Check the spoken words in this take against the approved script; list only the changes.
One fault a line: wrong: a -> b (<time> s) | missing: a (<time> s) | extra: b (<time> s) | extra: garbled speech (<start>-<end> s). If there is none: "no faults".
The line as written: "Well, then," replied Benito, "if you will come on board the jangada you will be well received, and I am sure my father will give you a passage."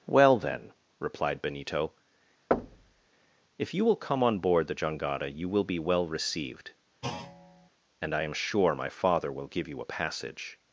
no faults